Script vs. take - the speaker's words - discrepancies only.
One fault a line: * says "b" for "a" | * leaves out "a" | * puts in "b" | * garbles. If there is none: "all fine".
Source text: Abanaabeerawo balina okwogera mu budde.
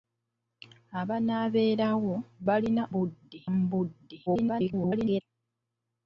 * says "budde" for "okwogera"
* garbles